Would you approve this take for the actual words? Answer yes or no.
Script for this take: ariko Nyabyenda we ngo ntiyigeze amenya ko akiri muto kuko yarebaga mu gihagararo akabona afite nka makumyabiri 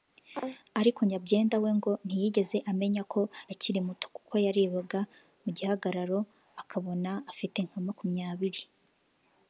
yes